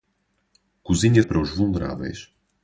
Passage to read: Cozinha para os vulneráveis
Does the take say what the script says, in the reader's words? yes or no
yes